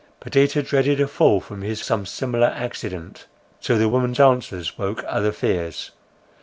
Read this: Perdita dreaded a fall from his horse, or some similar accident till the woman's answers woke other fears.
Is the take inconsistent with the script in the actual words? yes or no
yes